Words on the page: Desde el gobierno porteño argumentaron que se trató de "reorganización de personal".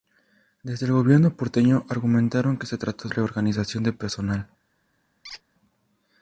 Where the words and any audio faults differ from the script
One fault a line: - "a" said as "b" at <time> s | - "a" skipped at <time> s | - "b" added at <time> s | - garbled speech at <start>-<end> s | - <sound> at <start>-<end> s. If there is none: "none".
- squeak at 5.2-5.4 s